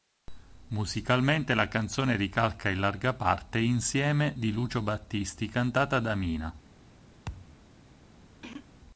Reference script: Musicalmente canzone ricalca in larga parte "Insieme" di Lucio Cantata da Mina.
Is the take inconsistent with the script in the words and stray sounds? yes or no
yes